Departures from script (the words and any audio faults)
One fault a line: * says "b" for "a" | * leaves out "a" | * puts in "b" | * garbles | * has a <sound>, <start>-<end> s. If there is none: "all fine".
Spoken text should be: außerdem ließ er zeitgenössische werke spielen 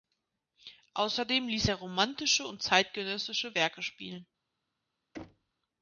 * puts in "romantische und"
* has a thud, 5.1-5.5 s